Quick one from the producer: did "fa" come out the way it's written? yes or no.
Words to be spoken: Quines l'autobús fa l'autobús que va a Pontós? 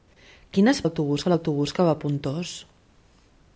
yes